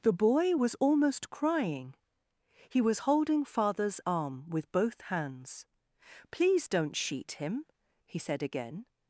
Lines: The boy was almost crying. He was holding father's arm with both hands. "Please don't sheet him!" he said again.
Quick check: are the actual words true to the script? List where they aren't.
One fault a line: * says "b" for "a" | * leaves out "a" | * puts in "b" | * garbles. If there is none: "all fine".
all fine